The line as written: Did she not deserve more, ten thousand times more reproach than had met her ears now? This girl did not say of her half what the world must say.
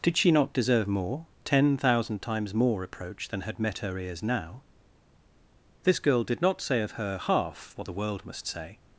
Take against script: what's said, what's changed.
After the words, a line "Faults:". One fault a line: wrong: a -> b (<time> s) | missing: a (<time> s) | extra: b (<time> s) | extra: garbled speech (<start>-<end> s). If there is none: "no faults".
Did she not deserve more, ten thousand times more reproach than had met her ears now? This girl did not say of her half what the world must say.
Faults:
no faults